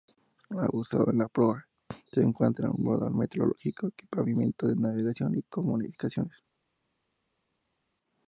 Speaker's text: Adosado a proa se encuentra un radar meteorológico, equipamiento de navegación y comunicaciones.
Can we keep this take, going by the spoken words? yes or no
no